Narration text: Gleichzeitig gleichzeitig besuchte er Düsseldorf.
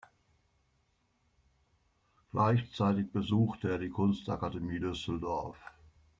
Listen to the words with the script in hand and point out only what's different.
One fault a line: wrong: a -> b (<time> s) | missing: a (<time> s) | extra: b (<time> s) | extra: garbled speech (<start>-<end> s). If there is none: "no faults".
missing: gleichzeitig (3.1 s)
extra: die Kunstakademie (3.8 s)